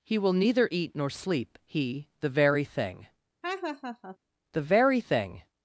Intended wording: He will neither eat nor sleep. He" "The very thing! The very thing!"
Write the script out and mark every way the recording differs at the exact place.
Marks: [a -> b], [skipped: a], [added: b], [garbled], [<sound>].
He will neither eat nor sleep. He" "The very thing! [laugh] The very thing!"